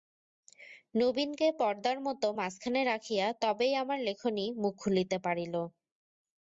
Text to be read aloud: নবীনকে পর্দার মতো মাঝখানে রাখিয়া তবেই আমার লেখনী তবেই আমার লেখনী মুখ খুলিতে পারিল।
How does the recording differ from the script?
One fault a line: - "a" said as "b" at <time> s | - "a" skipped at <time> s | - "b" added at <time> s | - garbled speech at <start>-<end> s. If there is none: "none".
- "তবেই আমার লেখনী" skipped at 4.4 s